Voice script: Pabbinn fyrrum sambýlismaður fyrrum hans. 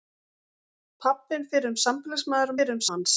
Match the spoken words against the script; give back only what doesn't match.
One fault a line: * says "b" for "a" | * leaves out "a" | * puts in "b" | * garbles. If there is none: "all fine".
all fine